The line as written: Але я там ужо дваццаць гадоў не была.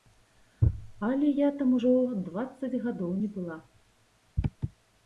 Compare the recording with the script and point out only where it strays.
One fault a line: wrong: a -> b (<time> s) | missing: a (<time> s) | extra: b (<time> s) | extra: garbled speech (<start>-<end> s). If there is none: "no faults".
no faults